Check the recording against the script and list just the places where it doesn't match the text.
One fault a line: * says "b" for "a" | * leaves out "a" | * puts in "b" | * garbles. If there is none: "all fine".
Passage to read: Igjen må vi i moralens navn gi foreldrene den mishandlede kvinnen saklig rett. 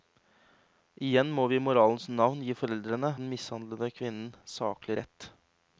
all fine